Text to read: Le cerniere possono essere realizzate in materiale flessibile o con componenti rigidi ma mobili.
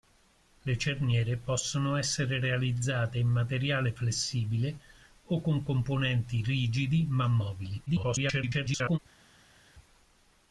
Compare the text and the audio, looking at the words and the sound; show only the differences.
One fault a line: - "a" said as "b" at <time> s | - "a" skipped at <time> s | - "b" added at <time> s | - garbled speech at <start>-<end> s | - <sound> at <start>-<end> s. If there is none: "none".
- garbled speech at 7.9-9.0 s